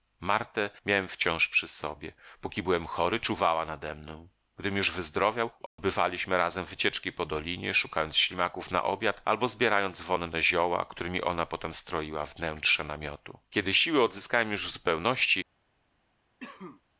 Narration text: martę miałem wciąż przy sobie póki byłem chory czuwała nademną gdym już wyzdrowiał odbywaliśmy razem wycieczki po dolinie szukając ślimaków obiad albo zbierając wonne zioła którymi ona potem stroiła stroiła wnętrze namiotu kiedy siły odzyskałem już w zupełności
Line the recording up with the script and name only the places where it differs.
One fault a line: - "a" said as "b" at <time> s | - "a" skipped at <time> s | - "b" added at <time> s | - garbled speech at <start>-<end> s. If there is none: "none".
- "na" added at 8.7 s
- "stroiła" skipped at 12.2 s